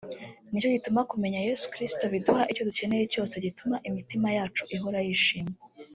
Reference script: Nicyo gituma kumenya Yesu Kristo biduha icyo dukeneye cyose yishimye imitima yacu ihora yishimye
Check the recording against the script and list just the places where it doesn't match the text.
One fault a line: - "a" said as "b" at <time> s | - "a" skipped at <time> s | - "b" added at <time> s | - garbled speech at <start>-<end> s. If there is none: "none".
- "yishimye" said as "gituma" at 3.4 s